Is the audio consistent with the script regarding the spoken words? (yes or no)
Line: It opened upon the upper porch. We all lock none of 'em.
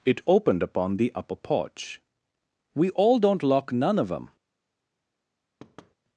no